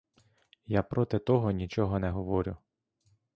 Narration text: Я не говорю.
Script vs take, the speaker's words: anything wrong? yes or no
yes